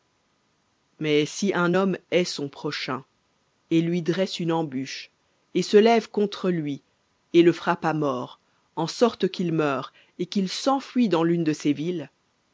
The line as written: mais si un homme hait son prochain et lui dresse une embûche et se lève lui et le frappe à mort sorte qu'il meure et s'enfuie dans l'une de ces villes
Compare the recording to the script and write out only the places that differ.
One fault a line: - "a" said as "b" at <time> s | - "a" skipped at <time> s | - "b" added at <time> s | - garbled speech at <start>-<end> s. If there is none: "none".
- "contre" added at 6.1 s
- "en" added at 8.8 s
- "qu'il" added at 10.3 s